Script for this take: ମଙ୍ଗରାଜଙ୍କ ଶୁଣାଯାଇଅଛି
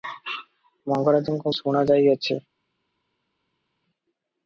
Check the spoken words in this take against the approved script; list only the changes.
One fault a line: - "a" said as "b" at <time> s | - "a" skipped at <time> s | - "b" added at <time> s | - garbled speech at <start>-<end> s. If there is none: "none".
none